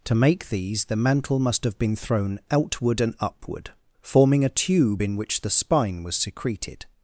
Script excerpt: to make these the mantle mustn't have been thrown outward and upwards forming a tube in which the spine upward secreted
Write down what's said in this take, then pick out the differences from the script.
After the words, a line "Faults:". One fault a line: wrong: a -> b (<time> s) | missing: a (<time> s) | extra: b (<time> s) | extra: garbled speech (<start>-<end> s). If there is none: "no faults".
to make these the mantle must have been thrown outward and upward forming a tube in which the spine was secreted
Faults:
wrong: mustn't -> must (1.4 s)
wrong: upwards -> upward (3.2 s)
wrong: upward -> was (6.0 s)